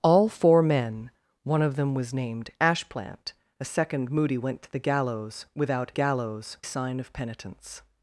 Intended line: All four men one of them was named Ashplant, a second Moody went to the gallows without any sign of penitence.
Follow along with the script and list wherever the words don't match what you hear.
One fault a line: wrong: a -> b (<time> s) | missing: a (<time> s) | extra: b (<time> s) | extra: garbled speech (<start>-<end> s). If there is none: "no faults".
wrong: any -> gallows (5.9 s)